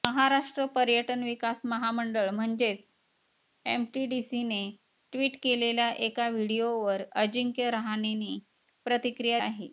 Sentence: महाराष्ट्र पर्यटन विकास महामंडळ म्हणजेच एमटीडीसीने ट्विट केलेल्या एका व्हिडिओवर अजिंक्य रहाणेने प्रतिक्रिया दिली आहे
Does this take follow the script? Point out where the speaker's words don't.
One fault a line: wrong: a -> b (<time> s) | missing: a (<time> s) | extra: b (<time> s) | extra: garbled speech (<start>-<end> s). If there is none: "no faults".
missing: दिली (9.4 s)